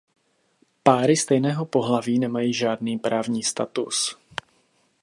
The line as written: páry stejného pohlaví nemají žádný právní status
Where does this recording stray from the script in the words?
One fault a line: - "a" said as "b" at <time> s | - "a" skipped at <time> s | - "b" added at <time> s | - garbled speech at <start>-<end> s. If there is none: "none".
none